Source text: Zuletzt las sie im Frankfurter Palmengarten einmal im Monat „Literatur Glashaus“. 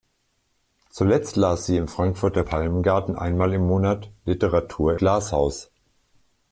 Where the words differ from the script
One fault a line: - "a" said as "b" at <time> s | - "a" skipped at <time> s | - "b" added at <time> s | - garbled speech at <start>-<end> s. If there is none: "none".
none